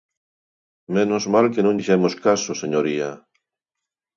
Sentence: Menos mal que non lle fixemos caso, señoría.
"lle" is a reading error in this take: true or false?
true